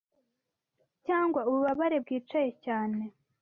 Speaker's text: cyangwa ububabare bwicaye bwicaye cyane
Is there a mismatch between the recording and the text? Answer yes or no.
yes